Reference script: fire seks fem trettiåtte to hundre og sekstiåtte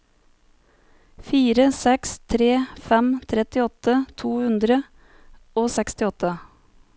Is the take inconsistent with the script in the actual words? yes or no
yes